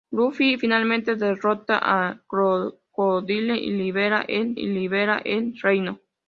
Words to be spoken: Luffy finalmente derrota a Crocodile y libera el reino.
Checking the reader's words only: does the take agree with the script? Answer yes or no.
no